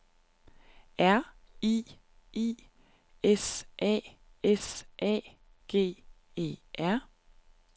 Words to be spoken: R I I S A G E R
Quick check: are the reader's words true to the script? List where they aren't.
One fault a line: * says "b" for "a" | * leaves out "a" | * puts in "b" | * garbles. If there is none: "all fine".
* puts in "S A"